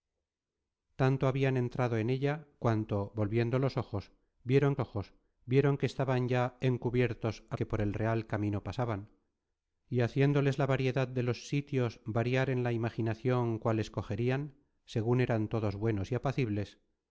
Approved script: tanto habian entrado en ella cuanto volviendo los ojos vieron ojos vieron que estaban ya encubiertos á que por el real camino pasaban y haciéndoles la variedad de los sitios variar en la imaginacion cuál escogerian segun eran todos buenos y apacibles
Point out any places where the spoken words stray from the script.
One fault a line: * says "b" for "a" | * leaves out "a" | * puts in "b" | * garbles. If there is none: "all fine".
all fine